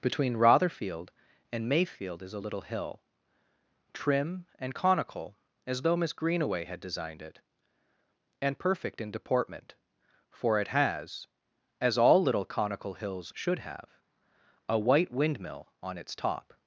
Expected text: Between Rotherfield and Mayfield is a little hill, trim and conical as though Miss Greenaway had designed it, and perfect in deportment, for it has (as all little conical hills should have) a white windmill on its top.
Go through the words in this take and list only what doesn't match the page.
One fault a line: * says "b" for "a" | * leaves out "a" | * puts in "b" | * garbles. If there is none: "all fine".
all fine